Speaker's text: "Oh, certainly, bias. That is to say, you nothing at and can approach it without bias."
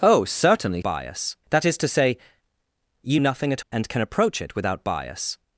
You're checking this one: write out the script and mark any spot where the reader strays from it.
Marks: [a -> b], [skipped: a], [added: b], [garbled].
"Oh, certainly, bias. That is to say, you nothing at and can approach it without bias."